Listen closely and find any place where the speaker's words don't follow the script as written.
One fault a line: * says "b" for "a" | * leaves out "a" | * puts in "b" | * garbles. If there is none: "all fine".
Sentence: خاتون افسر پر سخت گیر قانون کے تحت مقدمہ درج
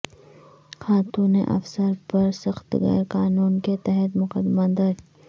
all fine